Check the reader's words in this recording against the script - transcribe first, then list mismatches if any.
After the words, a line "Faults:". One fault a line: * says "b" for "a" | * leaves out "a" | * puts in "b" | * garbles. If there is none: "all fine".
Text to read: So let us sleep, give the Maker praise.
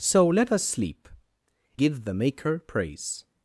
So let us sleep, give the Maker praise.
Faults:
all fine